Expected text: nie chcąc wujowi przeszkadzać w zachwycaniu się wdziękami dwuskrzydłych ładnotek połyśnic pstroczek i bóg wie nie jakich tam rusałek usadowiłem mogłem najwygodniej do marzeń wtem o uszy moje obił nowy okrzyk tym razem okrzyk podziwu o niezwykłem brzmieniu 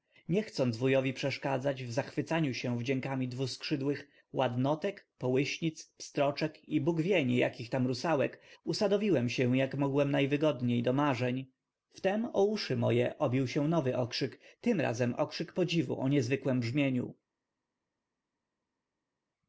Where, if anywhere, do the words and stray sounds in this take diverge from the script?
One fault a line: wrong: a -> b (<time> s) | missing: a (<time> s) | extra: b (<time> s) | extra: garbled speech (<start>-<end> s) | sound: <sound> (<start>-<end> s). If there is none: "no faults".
extra: się jak (9.3 s)
extra: się (13.5 s)